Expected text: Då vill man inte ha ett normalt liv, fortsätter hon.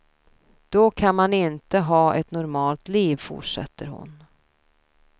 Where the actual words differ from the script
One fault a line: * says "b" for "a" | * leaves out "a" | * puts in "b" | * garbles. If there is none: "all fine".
* says "kan" for "vill"